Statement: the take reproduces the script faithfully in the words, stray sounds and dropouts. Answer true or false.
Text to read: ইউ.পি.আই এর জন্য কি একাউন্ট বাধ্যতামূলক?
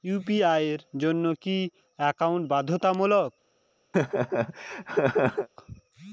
false